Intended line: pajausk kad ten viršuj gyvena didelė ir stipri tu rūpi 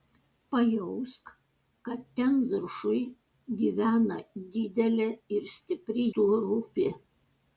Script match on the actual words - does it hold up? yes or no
yes